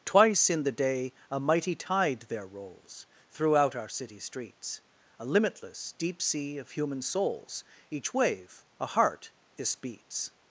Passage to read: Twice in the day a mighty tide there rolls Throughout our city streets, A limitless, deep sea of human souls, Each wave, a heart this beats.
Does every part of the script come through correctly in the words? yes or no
yes